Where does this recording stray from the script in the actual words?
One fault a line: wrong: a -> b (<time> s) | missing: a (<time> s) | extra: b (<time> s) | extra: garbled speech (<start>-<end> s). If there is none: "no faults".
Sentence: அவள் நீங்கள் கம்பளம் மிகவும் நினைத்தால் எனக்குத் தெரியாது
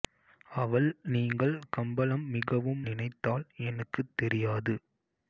no faults